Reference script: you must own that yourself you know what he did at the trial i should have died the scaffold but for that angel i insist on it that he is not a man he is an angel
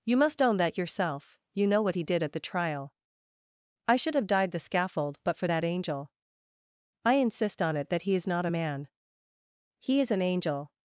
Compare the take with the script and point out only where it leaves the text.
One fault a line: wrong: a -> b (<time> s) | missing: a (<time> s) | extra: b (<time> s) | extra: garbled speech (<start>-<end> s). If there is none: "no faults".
no faults